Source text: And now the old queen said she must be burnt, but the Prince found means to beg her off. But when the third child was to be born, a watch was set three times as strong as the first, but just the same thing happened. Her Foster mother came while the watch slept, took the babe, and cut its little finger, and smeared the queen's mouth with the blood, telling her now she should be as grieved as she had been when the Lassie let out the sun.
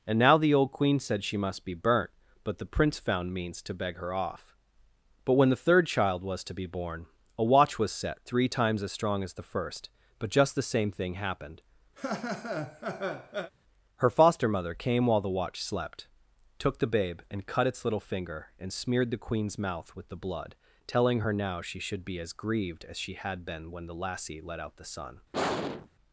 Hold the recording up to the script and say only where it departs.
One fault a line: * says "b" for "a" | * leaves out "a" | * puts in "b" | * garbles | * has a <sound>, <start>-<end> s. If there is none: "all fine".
* has a laugh, 12.0-13.5 s
* has a sigh, 25.3-25.9 s